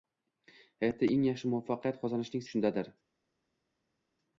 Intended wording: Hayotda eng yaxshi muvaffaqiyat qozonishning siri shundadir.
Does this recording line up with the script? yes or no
no